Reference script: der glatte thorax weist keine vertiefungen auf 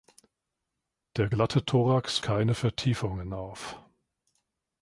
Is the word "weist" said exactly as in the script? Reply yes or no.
no